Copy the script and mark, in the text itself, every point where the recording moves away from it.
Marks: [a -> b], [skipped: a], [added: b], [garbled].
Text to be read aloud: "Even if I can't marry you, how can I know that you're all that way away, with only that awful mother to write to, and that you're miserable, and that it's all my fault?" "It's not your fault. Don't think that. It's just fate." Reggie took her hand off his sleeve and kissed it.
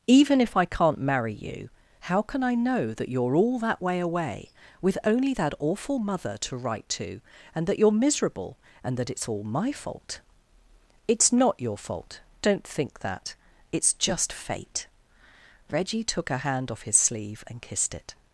"Even if I can't marry you, how can I know that you're all that way away, with only that awful mother to write to, and that you're miserable, and that it's all my fault?" "It's not your fault. Don't think that. It's just fate." Reggie took her hand off his sleeve and kissed it.